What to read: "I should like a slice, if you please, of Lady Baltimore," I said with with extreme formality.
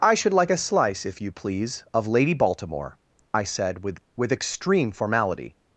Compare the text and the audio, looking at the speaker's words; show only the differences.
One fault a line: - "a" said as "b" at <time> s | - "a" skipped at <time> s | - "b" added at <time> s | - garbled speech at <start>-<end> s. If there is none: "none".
none